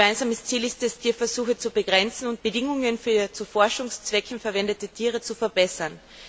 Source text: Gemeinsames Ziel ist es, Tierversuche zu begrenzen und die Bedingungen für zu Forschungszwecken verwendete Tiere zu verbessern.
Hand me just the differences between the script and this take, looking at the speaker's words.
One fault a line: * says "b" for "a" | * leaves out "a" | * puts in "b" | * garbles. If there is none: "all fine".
* leaves out "die"